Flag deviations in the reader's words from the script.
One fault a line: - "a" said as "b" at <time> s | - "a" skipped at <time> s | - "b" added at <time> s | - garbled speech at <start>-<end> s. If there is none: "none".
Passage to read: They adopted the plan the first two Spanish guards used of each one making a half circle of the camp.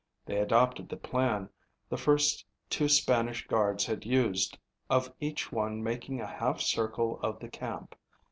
- "had" added at 3.9 s